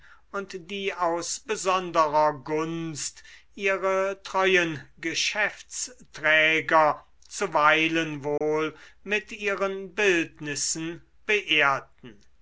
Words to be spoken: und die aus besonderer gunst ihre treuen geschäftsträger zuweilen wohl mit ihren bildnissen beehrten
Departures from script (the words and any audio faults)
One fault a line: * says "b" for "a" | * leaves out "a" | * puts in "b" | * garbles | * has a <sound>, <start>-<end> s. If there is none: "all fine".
* has a dropout, 8.4-8.4 s